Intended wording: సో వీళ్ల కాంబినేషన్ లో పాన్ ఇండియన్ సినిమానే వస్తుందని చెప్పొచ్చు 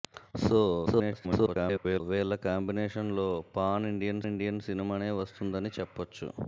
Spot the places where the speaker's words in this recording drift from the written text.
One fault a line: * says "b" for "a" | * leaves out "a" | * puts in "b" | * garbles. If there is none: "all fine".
* garbles
* puts in "ఇండియన్"